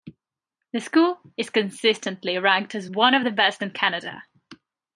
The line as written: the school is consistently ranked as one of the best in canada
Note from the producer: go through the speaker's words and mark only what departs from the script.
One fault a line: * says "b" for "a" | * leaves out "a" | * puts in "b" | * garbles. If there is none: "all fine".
all fine